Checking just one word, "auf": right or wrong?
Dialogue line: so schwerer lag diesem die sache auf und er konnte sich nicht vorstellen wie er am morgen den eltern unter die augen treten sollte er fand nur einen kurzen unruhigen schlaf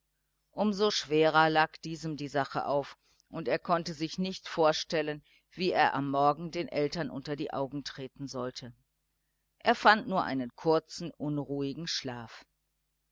right